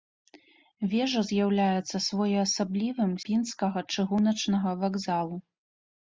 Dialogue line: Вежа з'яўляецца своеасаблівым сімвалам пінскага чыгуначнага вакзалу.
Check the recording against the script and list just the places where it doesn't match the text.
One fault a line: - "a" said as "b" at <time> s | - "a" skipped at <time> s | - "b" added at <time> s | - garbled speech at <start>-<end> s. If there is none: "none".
- "сімвалам" skipped at 3.1 s